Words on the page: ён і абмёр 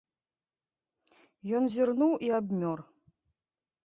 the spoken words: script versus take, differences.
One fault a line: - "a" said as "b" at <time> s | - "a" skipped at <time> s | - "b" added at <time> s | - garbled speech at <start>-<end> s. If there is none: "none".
- "зірнуў" added at 1.7 s